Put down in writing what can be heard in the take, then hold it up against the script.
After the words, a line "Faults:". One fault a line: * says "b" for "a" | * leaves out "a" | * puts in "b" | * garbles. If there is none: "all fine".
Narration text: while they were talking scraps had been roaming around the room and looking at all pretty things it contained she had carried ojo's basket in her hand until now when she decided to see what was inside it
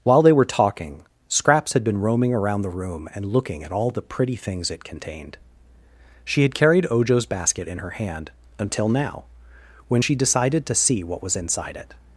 while they were talking scraps had been roaming around the room and looking at all the pretty things it contained she had carried ojo's basket in her hand until now when she decided to see what was inside it
Faults:
* puts in "the"